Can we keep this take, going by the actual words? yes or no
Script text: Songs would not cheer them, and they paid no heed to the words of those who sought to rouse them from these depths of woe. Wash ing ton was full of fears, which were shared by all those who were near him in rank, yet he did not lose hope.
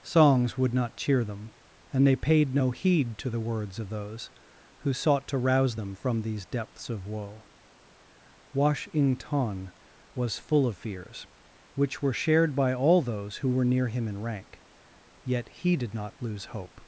yes